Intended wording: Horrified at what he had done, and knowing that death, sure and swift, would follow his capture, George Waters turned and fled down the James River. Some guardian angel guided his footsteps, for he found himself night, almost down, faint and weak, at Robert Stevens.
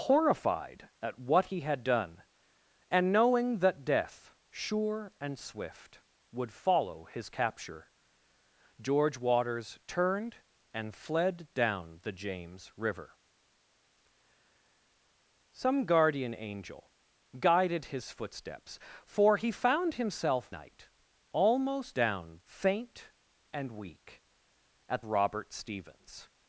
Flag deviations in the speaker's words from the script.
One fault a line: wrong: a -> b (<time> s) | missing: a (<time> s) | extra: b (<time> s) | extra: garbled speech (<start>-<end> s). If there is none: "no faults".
no faults